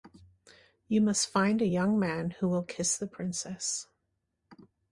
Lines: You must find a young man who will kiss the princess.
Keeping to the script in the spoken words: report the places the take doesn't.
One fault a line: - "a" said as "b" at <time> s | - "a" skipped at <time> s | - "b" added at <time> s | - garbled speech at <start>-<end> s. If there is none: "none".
none